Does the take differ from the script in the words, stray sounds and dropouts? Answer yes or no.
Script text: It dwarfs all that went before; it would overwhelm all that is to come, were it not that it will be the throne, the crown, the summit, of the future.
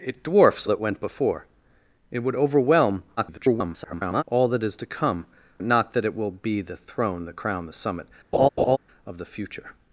yes